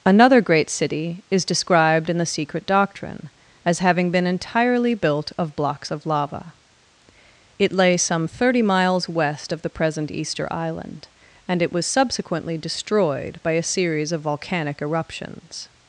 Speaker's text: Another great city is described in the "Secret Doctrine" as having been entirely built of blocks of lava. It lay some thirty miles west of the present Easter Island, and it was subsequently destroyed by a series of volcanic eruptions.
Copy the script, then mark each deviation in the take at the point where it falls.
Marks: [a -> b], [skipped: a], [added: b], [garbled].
Another great city is described in the "Secret Doctrine" as having been entirely built of blocks of lava. It lay some thirty miles west of the present Easter Island, and it was subsequently destroyed by a series of volcanic eruptions.